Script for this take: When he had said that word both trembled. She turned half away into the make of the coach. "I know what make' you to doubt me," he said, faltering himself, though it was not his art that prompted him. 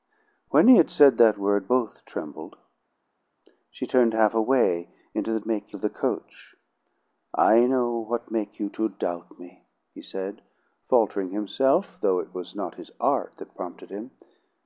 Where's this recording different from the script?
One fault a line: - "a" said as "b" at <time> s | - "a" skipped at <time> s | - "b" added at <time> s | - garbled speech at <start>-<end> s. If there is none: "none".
none